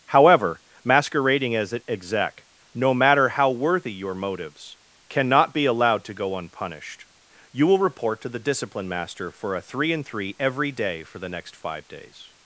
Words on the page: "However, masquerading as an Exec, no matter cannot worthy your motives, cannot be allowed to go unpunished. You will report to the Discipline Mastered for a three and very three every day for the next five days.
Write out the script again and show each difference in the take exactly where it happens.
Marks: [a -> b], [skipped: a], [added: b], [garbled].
"However, masquerading as an Exec, no matter [cannot -> how] worthy your motives, cannot be allowed to go unpunished. You will report to the Discipline [Mastered -> Master] for a three and [skipped: very] three every day for the next five days.